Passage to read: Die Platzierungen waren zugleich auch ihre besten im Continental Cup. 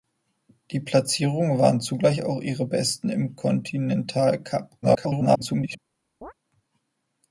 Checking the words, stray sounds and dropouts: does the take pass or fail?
fail